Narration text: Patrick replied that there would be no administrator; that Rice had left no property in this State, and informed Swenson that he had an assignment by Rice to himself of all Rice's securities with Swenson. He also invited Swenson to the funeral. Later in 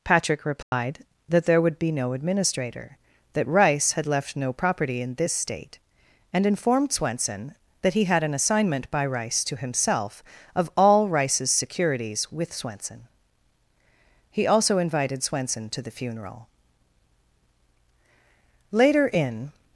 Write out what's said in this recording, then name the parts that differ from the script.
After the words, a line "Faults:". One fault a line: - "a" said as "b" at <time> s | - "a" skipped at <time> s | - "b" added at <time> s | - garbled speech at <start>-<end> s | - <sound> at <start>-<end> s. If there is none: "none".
Patrick replied that there would be no administrator; that Rice had left no property in this State, and informed Swenson that he had an assignment by Rice to himself of all Rice's securities with Swenson. He also invited Swenson to the funeral. Later in
Faults:
- dropout at 0.6-0.7 s